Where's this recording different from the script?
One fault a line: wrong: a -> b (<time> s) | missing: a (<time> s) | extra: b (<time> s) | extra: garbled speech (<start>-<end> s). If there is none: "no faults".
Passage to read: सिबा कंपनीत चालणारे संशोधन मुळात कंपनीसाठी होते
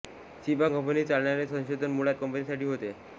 no faults